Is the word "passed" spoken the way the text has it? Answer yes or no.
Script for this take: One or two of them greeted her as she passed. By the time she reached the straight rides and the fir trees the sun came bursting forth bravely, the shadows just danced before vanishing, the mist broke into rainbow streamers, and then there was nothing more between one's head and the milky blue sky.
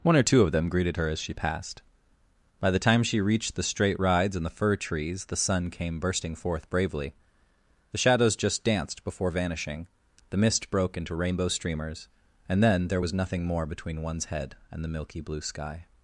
yes